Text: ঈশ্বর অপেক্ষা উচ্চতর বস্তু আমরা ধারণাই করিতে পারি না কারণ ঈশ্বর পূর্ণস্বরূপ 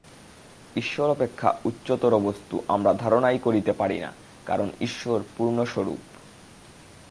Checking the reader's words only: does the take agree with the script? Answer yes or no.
yes